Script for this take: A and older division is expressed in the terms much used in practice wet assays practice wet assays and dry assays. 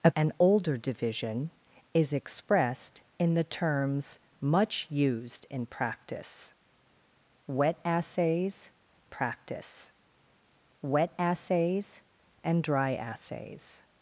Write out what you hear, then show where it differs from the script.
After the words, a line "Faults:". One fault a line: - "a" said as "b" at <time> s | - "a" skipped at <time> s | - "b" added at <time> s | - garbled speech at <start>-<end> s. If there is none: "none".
A and older division is expressed in the terms much used in practice wet assays practice wet assays and dry assays.
Faults:
none